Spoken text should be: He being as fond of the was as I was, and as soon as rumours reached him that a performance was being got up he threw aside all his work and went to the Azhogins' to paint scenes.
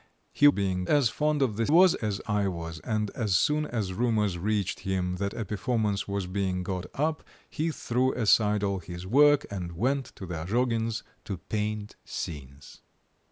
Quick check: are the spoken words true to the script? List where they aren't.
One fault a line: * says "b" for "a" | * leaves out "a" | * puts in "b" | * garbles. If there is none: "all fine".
all fine